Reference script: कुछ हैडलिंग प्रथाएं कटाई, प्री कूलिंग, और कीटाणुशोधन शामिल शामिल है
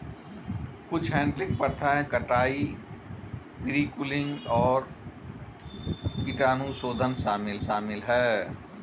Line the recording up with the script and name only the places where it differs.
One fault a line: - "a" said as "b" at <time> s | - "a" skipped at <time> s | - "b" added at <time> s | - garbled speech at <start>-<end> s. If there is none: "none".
none